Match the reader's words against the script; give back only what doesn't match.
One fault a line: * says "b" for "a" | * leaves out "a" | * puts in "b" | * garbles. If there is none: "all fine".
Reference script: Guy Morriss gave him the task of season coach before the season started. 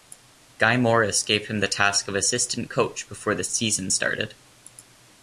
* says "assistant" for "season"